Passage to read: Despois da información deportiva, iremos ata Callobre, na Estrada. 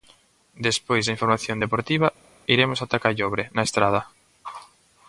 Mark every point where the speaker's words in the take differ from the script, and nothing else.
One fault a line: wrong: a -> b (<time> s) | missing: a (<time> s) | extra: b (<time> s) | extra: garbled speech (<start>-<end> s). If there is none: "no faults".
no faults